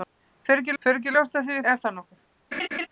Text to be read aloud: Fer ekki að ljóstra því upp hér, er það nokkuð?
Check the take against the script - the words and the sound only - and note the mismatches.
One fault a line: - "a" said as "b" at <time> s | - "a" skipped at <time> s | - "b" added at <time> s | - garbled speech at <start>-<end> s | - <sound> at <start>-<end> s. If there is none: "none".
- "fer ekki" added at 0.8 s
- "upp hér" skipped at 1.6 s
- laugh at 2.5-2.9 s